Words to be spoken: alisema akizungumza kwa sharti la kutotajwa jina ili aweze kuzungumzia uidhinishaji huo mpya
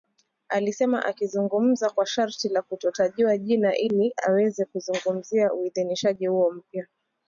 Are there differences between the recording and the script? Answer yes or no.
no